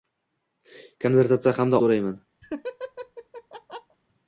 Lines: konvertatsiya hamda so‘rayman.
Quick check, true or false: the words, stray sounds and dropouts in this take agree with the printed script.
false